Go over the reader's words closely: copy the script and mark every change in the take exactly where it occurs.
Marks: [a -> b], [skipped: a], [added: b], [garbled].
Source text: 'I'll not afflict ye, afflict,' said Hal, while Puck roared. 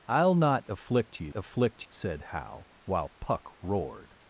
'I'll not afflict ye, afflict,' said Hal, while Puck roared.